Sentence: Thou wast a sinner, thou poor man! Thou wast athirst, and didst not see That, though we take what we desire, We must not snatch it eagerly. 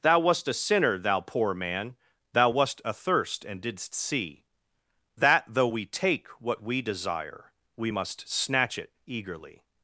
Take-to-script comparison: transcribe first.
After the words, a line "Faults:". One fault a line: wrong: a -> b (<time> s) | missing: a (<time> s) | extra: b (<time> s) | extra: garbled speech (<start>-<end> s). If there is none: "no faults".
Thou wast a sinner, thou poor man! Thou wast athirst, and didst see That, though we take what we desire, We must snatch it eagerly.
Faults:
missing: not (3.9 s)
missing: not (8.3 s)